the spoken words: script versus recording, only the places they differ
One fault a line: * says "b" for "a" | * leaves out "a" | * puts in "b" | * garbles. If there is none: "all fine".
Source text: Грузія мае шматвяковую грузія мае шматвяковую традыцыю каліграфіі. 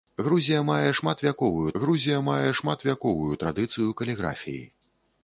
all fine